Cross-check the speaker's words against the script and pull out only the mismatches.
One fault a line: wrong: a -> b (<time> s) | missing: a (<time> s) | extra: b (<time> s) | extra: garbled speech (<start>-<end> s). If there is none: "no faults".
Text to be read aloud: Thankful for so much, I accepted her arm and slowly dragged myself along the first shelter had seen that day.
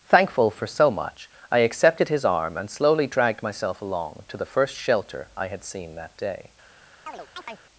wrong: her -> his (2.1 s)
extra: to (4.3 s)
extra: I (5.3 s)